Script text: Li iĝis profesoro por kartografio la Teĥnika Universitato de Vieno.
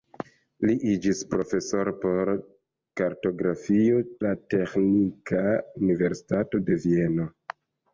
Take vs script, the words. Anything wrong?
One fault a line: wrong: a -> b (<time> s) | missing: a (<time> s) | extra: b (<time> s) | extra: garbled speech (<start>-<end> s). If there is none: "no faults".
no faults